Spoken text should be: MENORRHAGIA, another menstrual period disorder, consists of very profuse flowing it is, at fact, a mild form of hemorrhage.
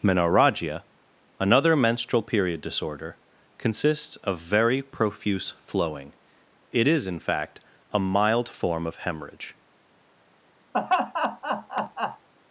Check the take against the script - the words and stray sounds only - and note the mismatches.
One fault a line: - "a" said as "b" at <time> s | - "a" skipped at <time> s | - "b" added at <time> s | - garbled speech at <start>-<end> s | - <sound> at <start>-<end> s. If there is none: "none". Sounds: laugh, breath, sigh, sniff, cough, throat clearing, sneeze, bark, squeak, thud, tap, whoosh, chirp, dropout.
- "at" said as "in" at 7.0 s
- laugh at 10.7-12.3 s